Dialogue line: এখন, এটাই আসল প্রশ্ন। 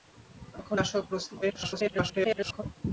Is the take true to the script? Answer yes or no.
no